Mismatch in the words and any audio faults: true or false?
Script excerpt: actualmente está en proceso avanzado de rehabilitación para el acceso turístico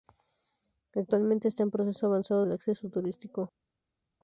true